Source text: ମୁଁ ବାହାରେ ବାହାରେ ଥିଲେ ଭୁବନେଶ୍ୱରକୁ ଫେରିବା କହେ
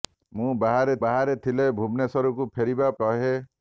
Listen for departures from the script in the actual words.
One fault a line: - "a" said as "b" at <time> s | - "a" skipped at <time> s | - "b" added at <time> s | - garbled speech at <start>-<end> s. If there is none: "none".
none